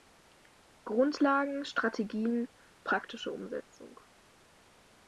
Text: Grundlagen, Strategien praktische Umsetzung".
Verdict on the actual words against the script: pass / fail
pass